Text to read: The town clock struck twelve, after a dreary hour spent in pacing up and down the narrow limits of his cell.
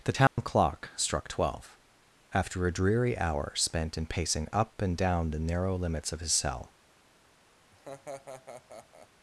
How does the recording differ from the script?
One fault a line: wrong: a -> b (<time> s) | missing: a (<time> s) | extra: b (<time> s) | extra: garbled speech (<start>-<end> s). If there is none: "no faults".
no faults